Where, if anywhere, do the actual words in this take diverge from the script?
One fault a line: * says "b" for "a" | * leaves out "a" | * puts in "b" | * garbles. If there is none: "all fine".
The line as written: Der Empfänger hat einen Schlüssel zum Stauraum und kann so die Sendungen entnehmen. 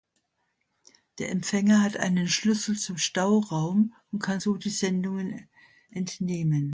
all fine